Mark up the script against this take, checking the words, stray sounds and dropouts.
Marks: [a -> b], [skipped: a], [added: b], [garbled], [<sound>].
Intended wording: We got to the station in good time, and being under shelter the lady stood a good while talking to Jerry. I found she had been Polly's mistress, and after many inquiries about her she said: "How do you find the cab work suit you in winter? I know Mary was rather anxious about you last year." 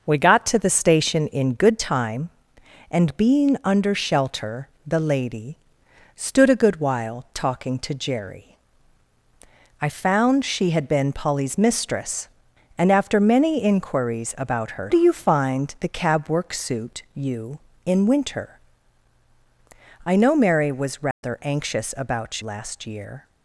We got to the station in good time, and being under shelter the lady stood a good while talking to Jerry. I found she had been Polly's mistress, and after many inquiries about her [skipped: she said: "How] do you find the cab work suit you in winter? I know Mary was rather [dropout] anxious about [skipped: you] last year."